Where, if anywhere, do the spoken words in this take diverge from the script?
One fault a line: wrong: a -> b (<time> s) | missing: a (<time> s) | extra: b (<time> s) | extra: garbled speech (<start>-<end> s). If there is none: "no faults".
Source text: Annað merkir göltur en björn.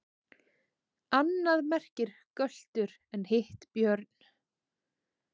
extra: hitt (3.3 s)